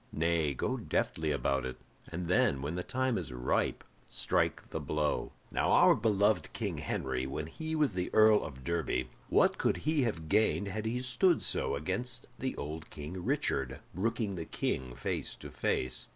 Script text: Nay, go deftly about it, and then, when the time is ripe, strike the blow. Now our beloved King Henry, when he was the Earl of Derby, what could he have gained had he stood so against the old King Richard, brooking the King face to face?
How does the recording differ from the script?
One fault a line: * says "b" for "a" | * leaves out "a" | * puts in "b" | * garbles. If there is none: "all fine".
all fine